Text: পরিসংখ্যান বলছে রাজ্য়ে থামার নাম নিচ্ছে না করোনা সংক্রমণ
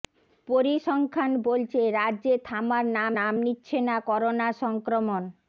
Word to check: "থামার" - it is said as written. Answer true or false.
true